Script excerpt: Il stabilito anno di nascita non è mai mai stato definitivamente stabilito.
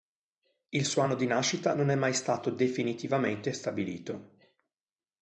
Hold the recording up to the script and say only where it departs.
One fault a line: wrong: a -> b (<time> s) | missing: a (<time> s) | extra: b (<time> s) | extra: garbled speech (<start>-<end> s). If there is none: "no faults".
wrong: stabilito -> suo (0.8 s)
missing: mai (2.1 s)